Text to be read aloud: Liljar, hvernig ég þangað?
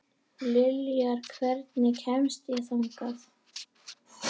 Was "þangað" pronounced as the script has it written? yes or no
yes